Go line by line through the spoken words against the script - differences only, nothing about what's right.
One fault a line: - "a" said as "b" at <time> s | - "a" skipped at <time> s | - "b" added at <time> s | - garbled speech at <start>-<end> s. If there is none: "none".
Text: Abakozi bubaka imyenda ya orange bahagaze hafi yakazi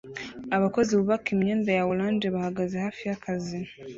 none